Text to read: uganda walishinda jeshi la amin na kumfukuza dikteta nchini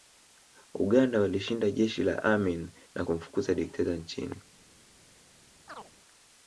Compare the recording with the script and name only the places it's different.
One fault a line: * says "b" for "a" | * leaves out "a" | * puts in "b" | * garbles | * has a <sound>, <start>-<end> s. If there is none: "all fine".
* has a chirp, 5.7-5.9 s